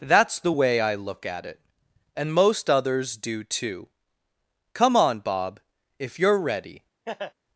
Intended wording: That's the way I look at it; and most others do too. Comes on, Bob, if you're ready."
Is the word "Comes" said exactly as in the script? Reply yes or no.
no